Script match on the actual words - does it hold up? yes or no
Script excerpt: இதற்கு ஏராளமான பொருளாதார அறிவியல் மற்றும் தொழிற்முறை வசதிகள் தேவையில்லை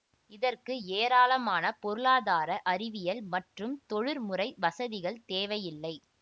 yes